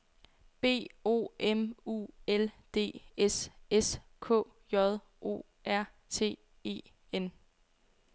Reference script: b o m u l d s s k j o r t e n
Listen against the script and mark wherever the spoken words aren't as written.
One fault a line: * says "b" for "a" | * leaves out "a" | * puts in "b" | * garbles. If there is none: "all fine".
all fine